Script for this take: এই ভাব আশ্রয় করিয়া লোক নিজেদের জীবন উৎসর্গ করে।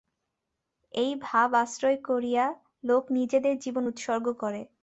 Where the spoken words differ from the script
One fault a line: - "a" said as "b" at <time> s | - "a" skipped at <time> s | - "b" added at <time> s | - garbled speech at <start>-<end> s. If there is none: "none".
none